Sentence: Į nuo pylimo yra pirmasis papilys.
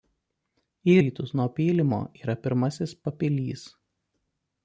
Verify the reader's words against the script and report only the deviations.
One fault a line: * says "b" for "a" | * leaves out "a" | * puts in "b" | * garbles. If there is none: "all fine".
* puts in "rytus"